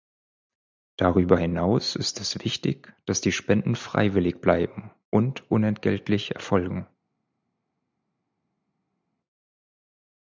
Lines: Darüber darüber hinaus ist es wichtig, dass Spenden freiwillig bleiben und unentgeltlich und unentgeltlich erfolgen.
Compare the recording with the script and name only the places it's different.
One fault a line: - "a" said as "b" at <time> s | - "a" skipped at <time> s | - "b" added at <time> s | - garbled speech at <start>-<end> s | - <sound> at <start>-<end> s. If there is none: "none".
- "darüber" skipped at 1.4 s
- "die" added at 3.2 s
- "und unentgeltlich" skipped at 6.3 s